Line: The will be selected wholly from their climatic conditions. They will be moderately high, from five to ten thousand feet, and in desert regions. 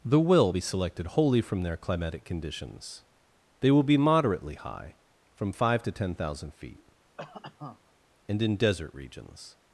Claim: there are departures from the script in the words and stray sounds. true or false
true